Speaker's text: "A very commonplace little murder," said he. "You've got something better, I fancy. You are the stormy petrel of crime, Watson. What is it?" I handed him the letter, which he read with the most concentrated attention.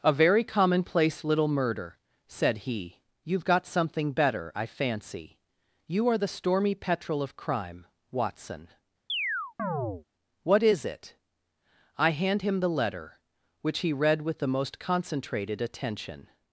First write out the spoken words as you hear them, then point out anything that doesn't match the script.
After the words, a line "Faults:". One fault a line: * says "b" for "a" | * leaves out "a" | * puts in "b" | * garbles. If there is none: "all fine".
"A very commonplace little murder," said he. "You've got something better, I fancy. You are the stormy petrel of crime, Watson. What is it?" I hand him the letter, which he read with the most concentrated attention.
Faults:
* says "hand" for "handed"